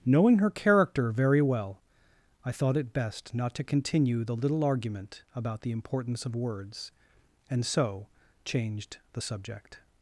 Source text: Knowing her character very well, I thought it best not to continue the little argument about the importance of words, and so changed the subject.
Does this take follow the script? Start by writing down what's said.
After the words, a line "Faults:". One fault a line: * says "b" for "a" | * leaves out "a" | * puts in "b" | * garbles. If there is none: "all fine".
Knowing her character very well, I thought it best not to continue the little argument about the importance of words, and so changed the subject.
Faults:
all fine